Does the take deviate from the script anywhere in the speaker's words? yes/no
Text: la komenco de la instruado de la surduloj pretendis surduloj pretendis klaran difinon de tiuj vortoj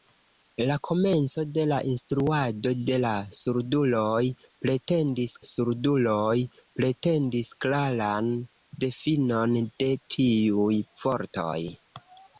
no